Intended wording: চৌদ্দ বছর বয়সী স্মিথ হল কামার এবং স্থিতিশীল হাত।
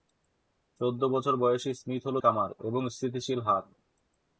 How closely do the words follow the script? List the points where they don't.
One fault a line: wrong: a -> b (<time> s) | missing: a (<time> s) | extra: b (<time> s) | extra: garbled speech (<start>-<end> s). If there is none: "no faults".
no faults